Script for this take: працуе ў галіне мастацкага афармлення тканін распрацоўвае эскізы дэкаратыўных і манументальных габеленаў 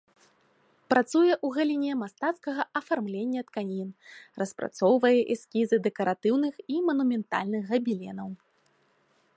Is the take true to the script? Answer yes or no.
yes